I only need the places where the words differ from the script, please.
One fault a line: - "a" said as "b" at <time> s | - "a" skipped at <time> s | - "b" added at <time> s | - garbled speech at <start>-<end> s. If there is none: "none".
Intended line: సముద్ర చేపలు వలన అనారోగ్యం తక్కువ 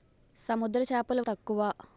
- "వలన అనారోగ్యం" skipped at 1.2 s